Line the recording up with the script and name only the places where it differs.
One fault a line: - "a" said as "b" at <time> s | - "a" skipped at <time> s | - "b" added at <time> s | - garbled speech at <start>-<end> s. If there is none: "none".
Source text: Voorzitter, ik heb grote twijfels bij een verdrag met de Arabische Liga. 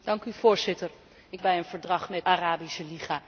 - "heb grote twijfels" skipped at 1.4 s
- "de" skipped at 2.3 s